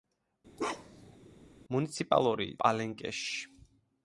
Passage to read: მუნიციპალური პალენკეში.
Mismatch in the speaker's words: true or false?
false